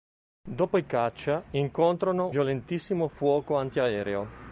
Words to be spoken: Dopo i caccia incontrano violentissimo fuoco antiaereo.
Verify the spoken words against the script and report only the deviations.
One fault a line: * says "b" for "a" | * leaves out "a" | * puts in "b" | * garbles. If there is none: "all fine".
all fine